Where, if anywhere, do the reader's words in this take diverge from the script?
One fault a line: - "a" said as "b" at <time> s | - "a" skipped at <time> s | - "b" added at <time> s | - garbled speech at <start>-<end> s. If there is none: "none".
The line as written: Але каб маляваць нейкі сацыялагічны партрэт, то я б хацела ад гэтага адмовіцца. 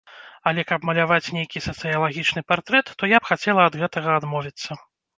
none